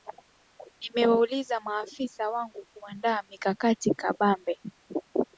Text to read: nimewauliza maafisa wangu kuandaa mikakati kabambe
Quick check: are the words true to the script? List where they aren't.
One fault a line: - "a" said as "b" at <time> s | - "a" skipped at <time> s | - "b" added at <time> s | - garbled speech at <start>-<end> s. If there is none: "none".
none